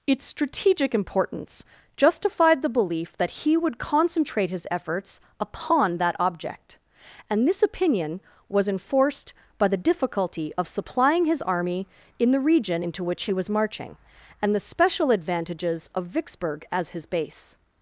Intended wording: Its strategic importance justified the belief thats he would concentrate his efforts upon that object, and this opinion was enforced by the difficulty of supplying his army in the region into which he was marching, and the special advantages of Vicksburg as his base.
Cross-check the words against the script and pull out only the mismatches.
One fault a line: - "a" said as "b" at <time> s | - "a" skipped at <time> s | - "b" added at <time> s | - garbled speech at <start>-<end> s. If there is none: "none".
- "thats" said as "that" at 3.2 s